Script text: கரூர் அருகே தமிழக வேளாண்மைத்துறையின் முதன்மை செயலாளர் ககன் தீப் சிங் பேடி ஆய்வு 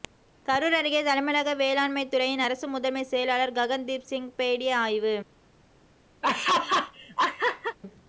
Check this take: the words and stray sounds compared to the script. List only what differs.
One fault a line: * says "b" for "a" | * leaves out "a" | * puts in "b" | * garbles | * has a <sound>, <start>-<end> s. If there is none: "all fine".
* puts in "அரசு"
* has a laugh, 6.2-7.8 s